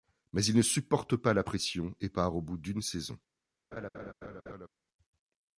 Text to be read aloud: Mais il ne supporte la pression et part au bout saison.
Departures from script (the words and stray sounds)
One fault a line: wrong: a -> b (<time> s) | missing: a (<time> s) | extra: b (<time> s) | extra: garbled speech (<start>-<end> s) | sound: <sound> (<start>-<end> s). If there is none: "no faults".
extra: pas (1.1 s)
extra: d'une (2.6 s)
sound: laugh (3.7-4.7 s)